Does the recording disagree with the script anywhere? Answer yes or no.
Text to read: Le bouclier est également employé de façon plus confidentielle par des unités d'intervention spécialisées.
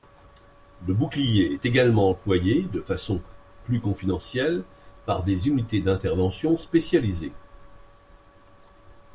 no